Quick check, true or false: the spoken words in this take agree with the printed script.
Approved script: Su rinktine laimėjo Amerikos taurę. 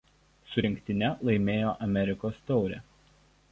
true